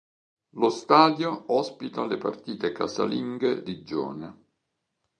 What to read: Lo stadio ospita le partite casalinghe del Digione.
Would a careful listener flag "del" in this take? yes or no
yes